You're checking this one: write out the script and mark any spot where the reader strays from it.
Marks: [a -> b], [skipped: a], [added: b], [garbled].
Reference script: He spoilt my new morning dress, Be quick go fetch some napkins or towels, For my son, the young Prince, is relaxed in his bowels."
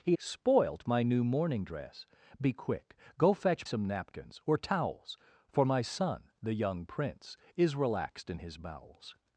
He spoilt my new morning dress, Be quick go fetch some napkins or towels, For my son, the young Prince, is relaxed in his bowels."